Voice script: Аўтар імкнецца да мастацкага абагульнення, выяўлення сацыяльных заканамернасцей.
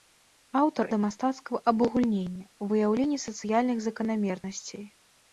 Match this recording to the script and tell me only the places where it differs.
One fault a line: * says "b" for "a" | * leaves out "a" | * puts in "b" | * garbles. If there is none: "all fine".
* leaves out "імкнецца"